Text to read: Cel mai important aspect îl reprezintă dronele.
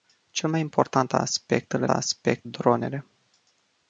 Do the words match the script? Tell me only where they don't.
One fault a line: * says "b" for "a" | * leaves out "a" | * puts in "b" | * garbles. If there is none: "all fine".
* says "aspect" for "reprezintă"